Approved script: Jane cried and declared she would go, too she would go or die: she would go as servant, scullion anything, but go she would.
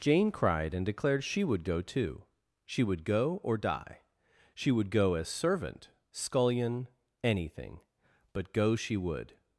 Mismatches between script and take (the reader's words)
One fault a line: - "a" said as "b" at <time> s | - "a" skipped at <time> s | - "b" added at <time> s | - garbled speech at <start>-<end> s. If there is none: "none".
none